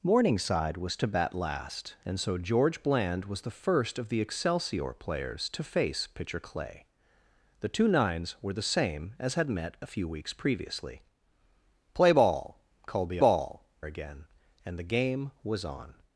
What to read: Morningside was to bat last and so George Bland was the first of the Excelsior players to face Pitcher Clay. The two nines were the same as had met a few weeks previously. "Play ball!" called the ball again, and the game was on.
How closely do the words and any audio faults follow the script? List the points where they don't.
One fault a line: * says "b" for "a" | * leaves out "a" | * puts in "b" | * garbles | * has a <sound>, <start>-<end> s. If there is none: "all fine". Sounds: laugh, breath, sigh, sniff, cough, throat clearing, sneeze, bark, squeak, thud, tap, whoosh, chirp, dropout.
all fine